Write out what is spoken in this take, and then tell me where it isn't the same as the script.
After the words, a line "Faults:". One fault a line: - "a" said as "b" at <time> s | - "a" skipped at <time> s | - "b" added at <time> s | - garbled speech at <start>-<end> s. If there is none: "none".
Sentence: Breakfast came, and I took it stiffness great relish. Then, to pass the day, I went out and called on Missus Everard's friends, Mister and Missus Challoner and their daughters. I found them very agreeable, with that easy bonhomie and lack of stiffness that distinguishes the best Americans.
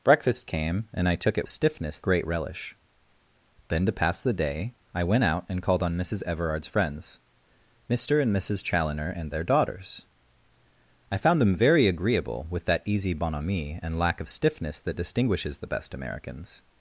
Breakfast came, and I took it stiffness great relish. Then, to pass the day, I went out and called on Missus Everard's friends, Mister and Missus Challoner and their daughters. I found them very agreeable, with that easy bonhomie and lack of stiffness that distinguishes the best Americans.
Faults:
none